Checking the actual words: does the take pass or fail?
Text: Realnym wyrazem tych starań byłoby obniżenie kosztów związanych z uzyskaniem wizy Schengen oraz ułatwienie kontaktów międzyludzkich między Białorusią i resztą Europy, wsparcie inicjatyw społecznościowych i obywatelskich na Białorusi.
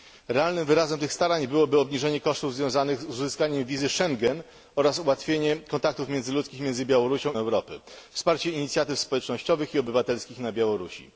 fail